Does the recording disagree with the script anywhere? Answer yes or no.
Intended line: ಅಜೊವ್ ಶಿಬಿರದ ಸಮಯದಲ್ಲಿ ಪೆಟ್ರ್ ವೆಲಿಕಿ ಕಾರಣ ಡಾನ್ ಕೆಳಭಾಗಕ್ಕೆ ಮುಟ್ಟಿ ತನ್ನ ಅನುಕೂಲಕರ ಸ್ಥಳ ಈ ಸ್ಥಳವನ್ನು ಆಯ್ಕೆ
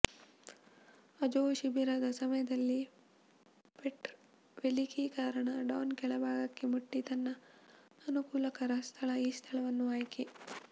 no